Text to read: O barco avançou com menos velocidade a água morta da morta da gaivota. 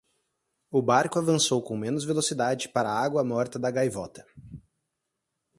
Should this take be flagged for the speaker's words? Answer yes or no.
yes